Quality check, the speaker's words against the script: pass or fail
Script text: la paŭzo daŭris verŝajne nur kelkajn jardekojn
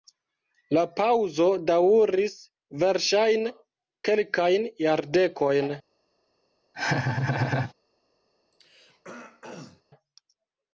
fail